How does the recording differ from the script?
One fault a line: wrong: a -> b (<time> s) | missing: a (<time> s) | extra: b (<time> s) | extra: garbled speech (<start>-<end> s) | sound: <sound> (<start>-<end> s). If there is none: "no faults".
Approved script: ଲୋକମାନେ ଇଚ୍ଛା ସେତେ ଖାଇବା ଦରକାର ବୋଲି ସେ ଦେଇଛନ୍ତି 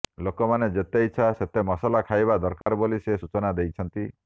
extra: ଯେତେ (0.7 s)
extra: ମସଲା (1.6 s)
sound: dropout (2.6-2.7 s)
extra: ସୂଚନା (3.2 s)